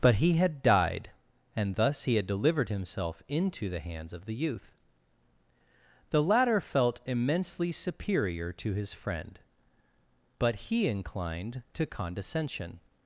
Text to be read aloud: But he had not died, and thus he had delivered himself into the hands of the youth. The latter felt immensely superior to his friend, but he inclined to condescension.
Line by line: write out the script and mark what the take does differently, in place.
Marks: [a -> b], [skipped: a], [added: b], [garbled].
But he had [skipped: not] died, and thus he had delivered himself into the hands of the youth. The latter felt immensely superior to his friend, but he inclined to condescension.